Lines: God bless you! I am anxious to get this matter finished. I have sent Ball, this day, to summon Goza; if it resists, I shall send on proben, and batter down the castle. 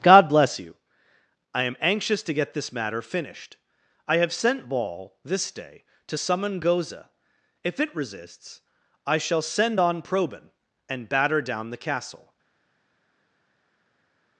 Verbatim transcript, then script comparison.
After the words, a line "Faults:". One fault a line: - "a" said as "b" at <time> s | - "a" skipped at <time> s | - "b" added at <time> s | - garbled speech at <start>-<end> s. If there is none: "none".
God bless you! I am anxious to get this matter finished. I have sent Ball, this day, to summon Goza; if it resists, I shall send on proben, and batter down the castle.
Faults:
none